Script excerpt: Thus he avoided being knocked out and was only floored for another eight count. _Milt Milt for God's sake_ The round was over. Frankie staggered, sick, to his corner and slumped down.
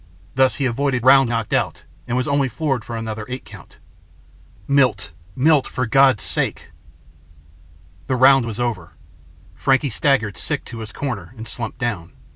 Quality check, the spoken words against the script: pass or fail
fail